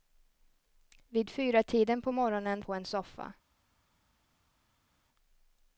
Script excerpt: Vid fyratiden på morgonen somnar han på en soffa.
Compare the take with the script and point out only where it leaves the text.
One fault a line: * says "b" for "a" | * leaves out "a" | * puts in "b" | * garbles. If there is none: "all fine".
* leaves out "somnar han"